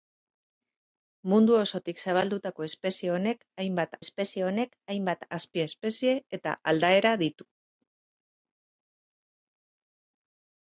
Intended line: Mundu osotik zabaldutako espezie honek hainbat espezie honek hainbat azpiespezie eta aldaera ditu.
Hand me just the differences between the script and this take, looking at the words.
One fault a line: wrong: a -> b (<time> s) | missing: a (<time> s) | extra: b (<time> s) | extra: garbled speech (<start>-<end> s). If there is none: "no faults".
no faults